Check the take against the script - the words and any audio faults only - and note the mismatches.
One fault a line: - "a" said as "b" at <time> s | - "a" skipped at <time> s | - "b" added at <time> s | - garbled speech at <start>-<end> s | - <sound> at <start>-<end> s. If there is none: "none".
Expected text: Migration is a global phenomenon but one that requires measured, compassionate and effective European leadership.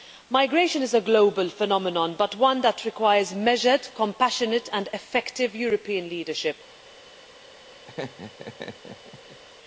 - laugh at 7.9-9.4 s